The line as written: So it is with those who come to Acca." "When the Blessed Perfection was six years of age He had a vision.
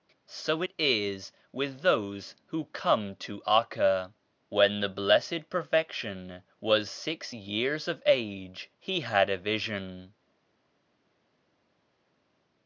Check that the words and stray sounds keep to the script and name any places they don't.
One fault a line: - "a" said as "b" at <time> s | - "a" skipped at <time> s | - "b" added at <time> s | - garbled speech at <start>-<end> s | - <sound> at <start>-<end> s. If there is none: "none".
none